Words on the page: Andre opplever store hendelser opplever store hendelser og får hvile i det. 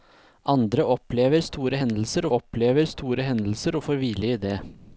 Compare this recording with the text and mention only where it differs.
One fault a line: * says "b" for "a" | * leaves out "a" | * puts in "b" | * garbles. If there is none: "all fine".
all fine